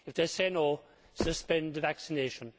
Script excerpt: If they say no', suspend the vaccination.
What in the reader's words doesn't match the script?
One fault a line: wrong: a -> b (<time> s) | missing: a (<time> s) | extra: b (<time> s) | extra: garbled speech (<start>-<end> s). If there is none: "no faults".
no faults